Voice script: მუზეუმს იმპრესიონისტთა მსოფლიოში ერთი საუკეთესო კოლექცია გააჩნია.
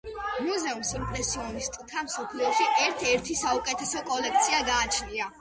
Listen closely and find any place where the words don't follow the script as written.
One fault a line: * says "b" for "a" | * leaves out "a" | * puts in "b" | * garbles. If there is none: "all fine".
* puts in "ერთ"